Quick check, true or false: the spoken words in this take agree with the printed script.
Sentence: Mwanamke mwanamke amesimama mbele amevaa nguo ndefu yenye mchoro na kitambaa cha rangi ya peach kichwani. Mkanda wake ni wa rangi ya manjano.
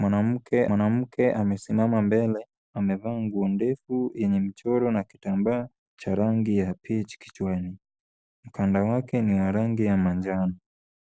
true